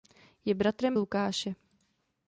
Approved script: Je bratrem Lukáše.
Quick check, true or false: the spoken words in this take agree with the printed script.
true